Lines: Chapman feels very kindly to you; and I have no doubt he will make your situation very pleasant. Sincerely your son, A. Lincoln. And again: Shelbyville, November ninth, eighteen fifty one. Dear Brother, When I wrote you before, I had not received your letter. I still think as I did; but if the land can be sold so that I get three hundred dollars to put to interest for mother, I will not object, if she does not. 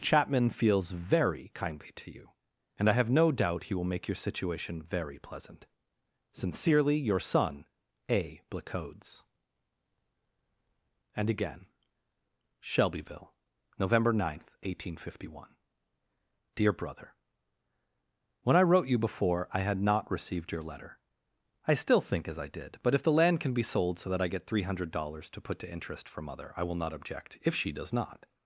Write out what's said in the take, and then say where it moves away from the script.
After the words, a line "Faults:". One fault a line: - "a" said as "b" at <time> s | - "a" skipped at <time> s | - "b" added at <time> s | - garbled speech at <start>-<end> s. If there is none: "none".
Chapman feels very kindly to you; and I have no doubt he will make your situation very pleasant. Sincerely your son, A. Blacodes. And again: Shelbyville, November ninth, eighteen fifty one. Dear Brother, When I wrote you before, I had not received your letter. I still think as I did; but if the land can be sold so that I get three hundred dollars to put to interest for mother, I will not object, if she does not.
Faults:
- "Lincoln" said as "Blacodes" at 8.5 s